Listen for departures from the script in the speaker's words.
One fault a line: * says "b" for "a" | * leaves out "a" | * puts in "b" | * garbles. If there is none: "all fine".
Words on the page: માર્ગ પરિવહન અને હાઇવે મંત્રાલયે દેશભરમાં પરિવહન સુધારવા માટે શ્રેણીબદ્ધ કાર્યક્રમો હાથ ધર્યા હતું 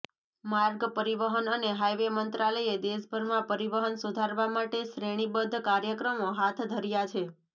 * says "છે" for "હતું"